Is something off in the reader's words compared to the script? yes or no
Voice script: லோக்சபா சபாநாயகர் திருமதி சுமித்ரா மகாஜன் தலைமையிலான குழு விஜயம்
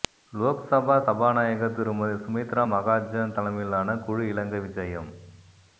yes